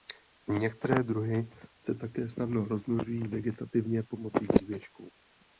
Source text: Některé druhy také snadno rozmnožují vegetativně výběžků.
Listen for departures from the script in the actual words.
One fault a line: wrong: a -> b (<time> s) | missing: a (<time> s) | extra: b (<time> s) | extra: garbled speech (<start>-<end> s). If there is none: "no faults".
extra: se (1.8 s)
extra: pomocí (4.0 s)